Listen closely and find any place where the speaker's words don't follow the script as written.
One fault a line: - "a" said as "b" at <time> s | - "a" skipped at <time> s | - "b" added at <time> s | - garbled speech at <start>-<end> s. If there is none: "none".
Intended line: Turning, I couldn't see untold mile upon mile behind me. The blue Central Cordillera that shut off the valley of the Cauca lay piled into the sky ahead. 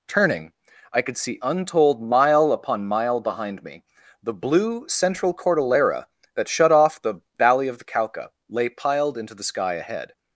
- "couldn't" said as "could" at 1.0 s